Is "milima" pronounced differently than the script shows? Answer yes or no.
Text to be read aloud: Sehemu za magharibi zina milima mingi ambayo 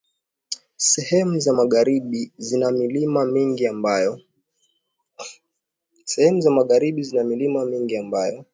no